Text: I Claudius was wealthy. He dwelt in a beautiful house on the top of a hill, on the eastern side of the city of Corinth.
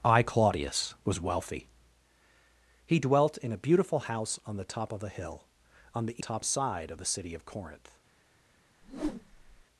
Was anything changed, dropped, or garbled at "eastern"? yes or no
yes